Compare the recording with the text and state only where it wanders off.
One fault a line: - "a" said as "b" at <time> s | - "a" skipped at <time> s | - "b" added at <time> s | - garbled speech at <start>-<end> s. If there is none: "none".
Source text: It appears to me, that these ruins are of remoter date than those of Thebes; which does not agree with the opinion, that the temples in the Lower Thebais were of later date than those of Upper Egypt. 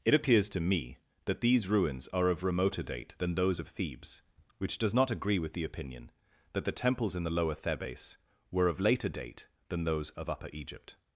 none